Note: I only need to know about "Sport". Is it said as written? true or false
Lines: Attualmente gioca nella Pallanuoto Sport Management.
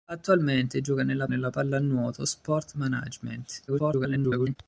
true